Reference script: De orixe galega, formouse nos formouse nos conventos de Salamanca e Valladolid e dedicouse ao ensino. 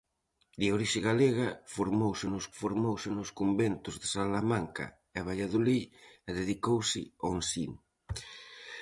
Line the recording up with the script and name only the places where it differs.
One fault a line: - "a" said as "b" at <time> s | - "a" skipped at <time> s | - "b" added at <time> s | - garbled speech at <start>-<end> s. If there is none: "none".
none